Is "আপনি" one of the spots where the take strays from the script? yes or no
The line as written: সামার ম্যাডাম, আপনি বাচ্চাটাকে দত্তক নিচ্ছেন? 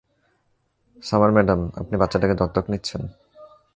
no